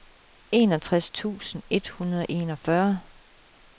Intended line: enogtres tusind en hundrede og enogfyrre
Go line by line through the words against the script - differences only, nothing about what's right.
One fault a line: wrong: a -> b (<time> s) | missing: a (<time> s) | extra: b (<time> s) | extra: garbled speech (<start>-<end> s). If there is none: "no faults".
wrong: en -> et (1.7 s)